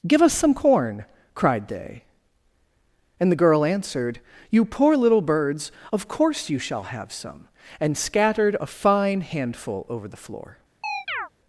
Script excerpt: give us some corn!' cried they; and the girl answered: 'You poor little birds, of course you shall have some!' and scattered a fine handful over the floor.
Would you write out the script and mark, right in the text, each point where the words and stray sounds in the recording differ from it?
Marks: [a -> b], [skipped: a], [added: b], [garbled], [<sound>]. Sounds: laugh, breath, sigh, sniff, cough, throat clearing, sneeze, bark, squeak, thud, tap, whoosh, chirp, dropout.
give us some corn!' cried they; and the girl answered: 'You poor little birds, of course you shall have some!' and scattered a fine handful over the floor. [chirp]